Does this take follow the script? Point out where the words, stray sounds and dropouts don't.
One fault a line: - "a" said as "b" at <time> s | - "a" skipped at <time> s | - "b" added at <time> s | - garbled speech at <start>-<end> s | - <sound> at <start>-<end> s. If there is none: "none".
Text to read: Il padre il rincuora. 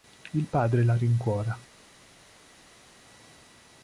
- "il" said as "la" at 0.8 s